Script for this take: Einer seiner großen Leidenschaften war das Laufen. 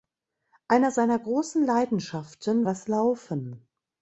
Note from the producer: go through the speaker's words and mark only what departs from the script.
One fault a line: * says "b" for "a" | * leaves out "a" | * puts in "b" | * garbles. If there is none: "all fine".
* leaves out "war"